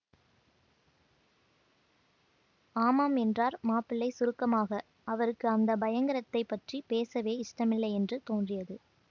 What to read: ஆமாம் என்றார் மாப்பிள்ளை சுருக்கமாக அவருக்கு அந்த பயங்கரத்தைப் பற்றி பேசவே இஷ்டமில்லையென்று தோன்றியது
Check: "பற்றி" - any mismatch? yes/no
no